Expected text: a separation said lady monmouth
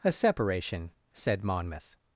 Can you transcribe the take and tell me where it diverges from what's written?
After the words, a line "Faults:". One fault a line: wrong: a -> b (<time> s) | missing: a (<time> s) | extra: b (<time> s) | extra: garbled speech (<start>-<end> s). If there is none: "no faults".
a separation said monmouth
Faults:
missing: lady (1.4 s)